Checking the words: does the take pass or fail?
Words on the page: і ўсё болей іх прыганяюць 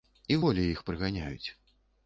fail